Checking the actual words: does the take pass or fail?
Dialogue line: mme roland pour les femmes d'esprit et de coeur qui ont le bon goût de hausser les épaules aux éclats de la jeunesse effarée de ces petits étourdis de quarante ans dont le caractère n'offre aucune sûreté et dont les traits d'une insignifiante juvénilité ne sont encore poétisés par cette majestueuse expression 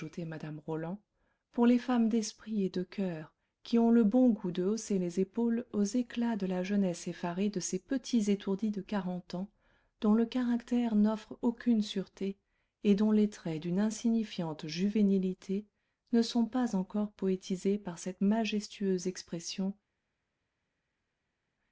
fail